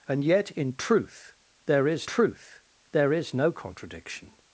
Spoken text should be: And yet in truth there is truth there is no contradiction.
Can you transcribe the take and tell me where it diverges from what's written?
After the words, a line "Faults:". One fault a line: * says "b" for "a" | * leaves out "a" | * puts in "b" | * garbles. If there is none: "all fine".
And yet in truth there is truth there is no contradiction.
Faults:
all fine